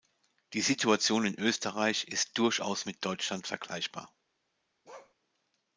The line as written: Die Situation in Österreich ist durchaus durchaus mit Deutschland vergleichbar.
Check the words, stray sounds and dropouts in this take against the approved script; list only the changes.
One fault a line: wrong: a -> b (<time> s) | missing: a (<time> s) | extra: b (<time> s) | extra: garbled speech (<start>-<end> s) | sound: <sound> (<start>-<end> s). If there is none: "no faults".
missing: durchaus (2.9 s)
sound: bark (4.8-5.1 s)